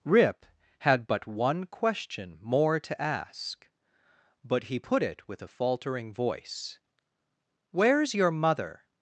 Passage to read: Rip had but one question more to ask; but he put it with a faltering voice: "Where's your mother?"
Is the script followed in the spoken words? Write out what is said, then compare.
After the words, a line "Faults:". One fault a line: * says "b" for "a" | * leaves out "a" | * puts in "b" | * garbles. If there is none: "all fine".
Rip had but one question more to ask; but he put it with a faltering voice: "Where's your mother?"
Faults:
all fine